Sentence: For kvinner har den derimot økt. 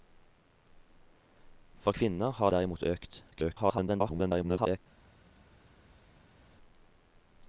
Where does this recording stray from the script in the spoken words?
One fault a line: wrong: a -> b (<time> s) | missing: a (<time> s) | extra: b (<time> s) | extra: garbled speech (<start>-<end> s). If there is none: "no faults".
missing: den (2.5 s)
extra: garbled speech (3.3-4.8 s)